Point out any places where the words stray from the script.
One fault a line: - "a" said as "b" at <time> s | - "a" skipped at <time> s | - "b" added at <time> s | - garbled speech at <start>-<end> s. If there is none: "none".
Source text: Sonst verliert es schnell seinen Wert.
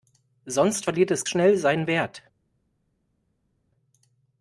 none